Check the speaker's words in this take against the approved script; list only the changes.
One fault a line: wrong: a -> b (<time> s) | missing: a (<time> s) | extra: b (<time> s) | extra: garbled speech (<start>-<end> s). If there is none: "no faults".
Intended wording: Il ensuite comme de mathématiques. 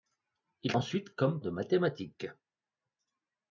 no faults